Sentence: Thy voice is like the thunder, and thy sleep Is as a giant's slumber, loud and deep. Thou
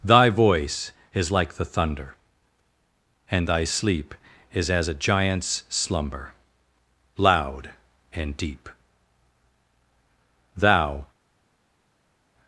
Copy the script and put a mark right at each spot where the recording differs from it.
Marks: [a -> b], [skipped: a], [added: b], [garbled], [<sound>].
Thy voice is like the thunder, and thy sleep Is as a giant's slumber, loud and deep. Thou